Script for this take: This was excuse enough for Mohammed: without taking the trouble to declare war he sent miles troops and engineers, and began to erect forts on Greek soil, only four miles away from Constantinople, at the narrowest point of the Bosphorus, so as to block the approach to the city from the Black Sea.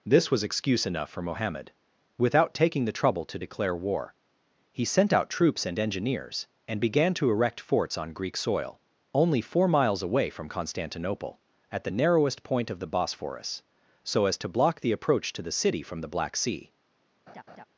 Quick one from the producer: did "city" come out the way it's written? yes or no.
yes